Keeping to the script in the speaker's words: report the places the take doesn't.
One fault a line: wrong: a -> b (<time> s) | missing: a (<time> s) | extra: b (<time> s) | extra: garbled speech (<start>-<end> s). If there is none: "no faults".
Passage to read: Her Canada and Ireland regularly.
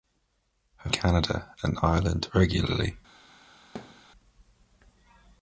no faults